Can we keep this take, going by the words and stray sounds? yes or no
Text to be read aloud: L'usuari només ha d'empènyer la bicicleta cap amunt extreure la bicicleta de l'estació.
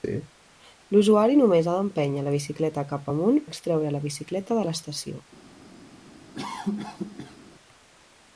no